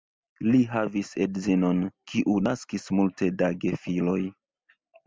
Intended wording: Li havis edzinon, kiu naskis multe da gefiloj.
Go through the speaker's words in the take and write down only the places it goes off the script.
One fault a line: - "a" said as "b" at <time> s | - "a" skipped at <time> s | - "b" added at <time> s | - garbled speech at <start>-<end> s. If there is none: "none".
none